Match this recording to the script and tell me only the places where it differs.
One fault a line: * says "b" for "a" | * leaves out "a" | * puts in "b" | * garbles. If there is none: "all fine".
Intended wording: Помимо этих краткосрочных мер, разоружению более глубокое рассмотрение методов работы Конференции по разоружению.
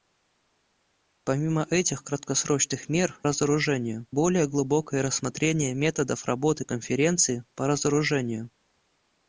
all fine